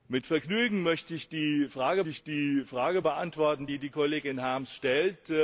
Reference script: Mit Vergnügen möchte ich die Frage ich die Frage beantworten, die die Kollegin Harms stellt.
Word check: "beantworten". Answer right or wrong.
right